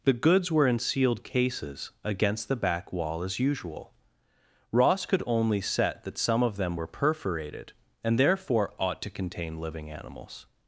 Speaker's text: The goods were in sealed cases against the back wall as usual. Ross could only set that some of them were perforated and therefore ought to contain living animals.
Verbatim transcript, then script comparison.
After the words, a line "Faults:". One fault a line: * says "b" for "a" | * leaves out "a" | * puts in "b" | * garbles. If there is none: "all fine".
The goods were in sealed cases against the back wall as usual. Ross could only set that some of them were perforated and therefore ought to contain living animals.
Faults:
all fine